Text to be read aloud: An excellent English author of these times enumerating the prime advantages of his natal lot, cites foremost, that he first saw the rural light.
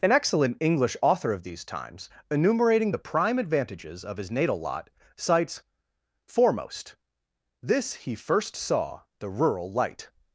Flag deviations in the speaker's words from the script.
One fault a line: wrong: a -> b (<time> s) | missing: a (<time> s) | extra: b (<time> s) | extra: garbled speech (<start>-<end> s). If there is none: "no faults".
wrong: that -> this (7.6 s)